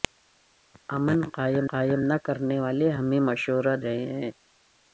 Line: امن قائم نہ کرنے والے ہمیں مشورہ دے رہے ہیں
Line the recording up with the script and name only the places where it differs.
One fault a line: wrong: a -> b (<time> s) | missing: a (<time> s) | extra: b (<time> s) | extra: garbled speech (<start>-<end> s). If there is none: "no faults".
extra: قائم (1.7 s)
missing: دے (3.8 s)